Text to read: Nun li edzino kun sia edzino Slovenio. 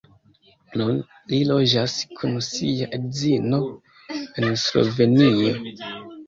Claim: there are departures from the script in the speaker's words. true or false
true